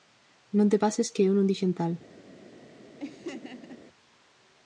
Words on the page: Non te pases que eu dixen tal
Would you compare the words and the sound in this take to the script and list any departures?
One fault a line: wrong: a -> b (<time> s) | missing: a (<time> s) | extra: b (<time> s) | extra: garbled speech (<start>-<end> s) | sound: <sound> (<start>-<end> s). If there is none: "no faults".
extra: non (1.4 s)
sound: laugh (3.0-3.8 s)